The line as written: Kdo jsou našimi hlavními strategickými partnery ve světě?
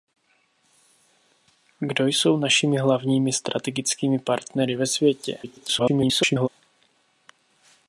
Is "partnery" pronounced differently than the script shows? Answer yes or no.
no